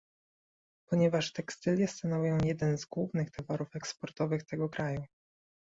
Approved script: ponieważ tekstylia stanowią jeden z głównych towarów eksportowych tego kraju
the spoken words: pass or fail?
pass